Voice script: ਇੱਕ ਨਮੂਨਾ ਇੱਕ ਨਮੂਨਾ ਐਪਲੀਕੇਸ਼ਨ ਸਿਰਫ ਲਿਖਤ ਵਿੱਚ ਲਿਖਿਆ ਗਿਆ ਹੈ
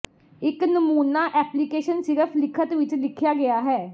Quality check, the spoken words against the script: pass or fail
fail